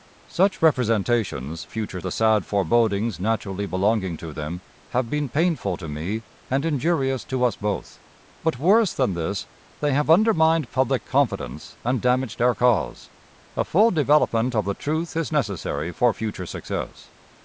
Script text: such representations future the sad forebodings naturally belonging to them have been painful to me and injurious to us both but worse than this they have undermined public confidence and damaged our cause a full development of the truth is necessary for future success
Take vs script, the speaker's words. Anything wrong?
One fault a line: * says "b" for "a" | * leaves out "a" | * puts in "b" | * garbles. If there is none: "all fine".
all fine